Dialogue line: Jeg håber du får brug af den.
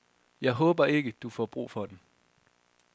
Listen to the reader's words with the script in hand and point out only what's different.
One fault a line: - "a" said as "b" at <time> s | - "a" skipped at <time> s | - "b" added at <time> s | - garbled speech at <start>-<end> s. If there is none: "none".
- "ikke" added at 0.8 s
- "af" said as "for" at 1.7 s